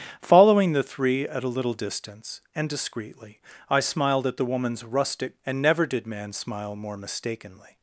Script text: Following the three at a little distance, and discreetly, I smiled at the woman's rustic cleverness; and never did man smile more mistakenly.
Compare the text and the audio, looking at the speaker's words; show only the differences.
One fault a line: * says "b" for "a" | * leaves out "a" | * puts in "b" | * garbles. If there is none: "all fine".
* leaves out "cleverness"